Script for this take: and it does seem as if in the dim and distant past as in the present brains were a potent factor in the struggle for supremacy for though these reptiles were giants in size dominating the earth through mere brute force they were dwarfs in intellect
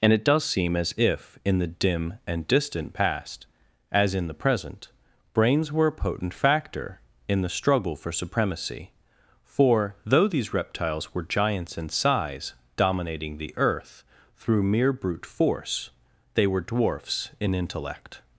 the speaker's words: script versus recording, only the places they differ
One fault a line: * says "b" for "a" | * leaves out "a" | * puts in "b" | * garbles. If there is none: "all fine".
all fine